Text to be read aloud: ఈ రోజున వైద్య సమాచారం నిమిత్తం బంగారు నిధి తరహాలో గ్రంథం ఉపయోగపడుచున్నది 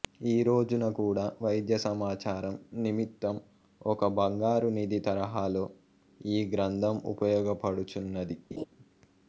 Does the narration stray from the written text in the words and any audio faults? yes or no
yes